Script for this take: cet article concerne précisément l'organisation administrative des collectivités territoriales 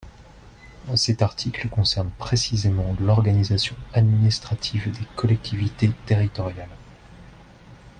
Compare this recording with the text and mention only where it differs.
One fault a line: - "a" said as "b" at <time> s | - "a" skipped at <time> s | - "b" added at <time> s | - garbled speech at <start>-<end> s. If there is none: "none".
none